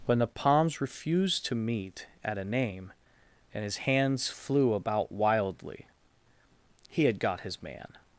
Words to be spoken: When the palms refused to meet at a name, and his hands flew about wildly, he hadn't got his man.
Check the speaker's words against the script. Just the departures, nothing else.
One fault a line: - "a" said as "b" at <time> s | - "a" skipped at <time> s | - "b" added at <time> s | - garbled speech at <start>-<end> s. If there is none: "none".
- "hadn't" said as "had" at 7.0 s